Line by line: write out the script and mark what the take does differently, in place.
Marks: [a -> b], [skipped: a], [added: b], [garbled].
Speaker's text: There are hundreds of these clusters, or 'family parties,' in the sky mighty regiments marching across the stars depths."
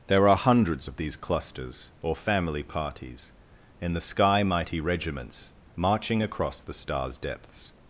There are hundreds of these clusters, or 'family parties,' in the sky mighty regiments marching across the stars depths."